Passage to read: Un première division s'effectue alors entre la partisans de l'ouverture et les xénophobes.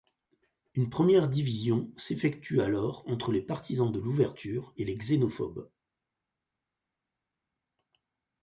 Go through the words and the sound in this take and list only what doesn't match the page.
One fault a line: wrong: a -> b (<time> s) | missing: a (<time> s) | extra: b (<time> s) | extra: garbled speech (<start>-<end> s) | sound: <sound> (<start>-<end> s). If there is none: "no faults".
wrong: Un -> Une (0.7 s)
wrong: la -> les (3.3 s)